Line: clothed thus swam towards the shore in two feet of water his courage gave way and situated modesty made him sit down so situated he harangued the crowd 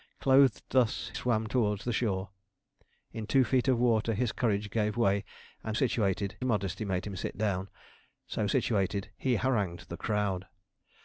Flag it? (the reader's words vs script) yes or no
no